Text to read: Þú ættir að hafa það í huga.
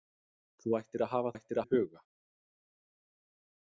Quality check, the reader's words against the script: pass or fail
fail